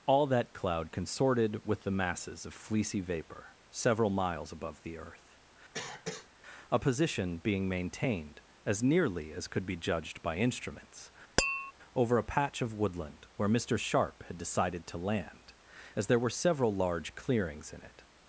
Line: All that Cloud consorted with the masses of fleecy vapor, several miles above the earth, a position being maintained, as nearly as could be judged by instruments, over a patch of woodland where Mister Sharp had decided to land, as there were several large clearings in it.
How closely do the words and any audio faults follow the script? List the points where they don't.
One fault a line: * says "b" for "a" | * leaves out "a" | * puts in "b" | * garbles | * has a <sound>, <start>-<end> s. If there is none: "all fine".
* has a cough, 5.7-6.3 s
* has a tap, 11.4-11.7 s